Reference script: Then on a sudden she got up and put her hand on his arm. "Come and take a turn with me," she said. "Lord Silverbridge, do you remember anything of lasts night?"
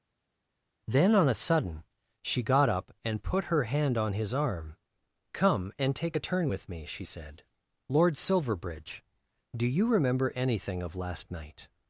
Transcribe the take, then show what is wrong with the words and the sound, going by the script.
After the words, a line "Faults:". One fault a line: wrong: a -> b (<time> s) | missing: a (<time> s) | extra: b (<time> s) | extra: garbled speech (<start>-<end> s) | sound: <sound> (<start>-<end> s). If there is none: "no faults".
Then on a sudden she got up and put her hand on his arm. "Come and take a turn with me," she said. "Lord Silverbridge, do you remember anything of last night?"
Faults:
wrong: lasts -> last (10.9 s)